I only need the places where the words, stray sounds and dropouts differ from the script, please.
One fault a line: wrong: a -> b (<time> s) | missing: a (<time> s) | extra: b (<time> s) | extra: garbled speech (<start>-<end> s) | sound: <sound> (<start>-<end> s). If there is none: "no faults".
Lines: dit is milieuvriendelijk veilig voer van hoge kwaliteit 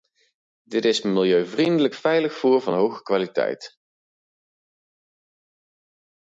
no faults